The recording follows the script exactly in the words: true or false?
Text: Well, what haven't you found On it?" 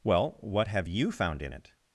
false